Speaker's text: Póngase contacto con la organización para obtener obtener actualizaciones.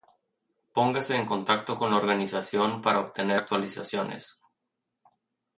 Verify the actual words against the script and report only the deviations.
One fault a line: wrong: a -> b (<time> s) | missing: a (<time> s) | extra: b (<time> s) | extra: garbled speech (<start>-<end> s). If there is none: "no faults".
extra: en (1.1 s)
missing: obtener (3.4 s)